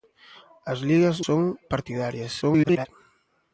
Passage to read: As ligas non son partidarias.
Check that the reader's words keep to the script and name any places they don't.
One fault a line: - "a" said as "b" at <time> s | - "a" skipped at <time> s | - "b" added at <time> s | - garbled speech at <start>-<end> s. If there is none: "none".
- "non" skipped at 1.2 s
- garbled speech at 2.4-2.9 s